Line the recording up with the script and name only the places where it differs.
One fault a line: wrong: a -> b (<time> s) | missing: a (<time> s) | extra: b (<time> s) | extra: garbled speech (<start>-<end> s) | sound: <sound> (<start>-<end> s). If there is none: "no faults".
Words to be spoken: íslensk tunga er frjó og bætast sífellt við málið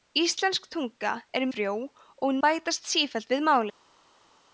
no faults